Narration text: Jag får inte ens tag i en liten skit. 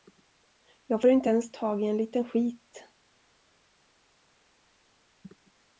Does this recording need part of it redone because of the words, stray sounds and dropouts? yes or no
no